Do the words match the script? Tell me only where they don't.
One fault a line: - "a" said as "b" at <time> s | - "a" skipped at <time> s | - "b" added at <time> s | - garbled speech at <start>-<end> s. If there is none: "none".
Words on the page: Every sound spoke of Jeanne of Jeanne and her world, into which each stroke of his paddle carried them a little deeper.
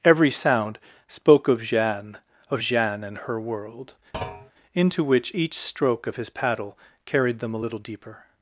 none